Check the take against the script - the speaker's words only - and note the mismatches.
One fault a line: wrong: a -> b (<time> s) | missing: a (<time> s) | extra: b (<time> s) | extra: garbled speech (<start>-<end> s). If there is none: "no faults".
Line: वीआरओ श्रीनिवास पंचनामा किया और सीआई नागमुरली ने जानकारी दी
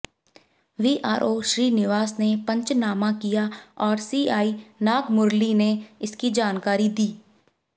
extra: ने (2.2 s)
extra: इसकी (6.0 s)